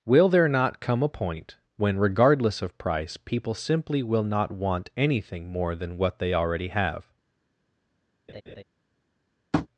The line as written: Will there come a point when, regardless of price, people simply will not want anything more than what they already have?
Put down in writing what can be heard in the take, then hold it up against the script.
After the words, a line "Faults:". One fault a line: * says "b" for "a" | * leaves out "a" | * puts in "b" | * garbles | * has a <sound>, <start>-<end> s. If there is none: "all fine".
Will there not come a point when, regardless of price, people simply will not want anything more than what they already have?
Faults:
* puts in "not"
* has a laugh, 8.3-8.6 s
* has a tap, 9.5-9.7 s